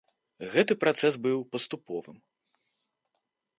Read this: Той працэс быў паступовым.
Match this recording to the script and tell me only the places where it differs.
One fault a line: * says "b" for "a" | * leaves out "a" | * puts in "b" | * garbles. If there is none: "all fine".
* says "Гэты" for "Той"